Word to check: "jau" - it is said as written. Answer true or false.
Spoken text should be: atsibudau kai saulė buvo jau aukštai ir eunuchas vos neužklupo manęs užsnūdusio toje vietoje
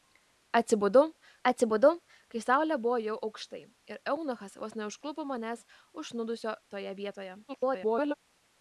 true